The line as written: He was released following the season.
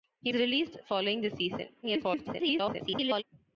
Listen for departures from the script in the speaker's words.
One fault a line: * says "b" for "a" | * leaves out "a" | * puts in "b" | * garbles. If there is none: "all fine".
* leaves out "was"
* garbles